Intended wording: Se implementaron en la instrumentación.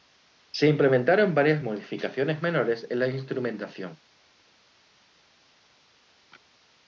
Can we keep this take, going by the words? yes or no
no